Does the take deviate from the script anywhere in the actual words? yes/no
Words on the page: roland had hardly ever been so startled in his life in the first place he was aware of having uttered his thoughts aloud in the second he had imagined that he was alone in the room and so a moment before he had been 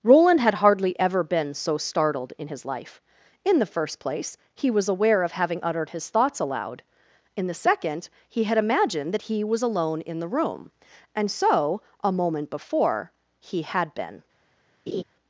no